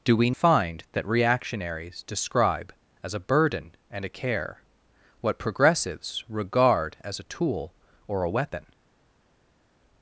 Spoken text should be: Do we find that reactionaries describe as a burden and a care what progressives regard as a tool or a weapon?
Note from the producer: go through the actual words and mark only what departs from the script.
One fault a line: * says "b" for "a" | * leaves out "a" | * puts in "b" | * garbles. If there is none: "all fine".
all fine